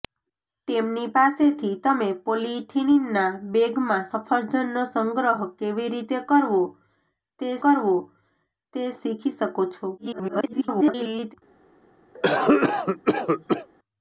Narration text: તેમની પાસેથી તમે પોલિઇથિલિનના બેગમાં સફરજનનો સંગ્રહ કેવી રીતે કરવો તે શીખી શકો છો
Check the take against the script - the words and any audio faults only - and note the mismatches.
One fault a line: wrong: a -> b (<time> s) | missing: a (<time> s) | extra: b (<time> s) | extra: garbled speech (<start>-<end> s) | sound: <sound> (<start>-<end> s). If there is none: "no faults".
extra: કરવો તે (7.6 s)
extra: garbled speech (10.0-11.3 s)
sound: cough (12.1-13.7 s)